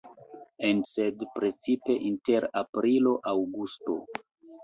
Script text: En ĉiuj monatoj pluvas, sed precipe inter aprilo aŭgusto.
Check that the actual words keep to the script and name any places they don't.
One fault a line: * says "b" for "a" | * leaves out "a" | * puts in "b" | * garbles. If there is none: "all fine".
* leaves out "ĉiuj monatoj pluvas"